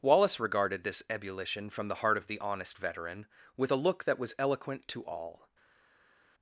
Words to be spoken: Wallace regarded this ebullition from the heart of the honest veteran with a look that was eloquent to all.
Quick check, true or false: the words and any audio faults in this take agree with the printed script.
true